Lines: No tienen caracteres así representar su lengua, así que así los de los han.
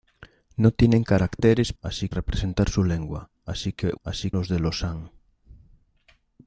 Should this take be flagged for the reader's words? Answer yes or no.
no